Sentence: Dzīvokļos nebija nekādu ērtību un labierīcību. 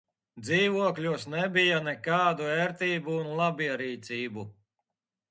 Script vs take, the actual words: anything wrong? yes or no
no